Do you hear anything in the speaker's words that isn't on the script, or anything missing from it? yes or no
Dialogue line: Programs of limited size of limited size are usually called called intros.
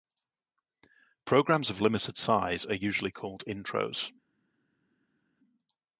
yes